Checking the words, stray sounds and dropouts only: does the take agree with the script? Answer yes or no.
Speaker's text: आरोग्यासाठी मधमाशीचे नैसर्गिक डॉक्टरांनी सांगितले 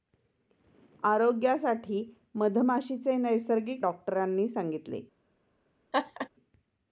no